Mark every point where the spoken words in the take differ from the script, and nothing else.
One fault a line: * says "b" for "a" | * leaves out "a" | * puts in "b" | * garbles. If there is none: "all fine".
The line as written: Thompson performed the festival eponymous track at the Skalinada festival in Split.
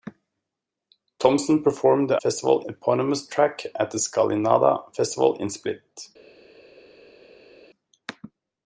all fine